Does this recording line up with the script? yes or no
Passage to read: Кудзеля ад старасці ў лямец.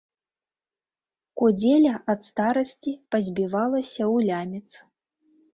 no